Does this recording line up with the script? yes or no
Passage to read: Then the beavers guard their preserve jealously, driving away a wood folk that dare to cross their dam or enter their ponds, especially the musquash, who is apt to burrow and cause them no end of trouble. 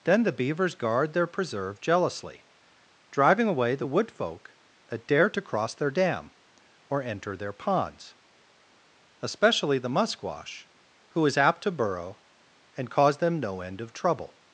no